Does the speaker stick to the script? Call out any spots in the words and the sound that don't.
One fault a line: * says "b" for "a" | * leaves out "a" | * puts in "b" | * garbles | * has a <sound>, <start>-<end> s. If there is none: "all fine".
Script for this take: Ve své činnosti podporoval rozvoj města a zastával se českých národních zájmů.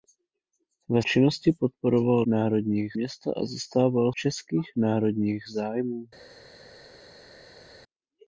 * leaves out "své"
* says "národních" for "rozvoj"
* leaves out "se"